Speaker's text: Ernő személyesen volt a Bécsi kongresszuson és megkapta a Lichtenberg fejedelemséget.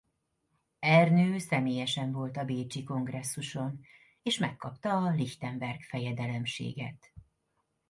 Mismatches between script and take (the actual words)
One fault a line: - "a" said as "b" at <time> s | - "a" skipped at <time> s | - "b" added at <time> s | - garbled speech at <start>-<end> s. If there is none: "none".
none